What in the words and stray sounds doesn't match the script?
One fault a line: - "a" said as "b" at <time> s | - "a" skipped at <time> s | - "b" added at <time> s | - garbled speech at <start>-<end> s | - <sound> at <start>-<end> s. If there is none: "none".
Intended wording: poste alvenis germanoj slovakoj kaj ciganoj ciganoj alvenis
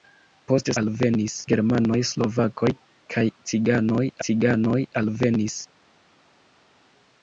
none